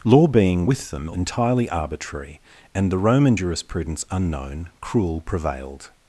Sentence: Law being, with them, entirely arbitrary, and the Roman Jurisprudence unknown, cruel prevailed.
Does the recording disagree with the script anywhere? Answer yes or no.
no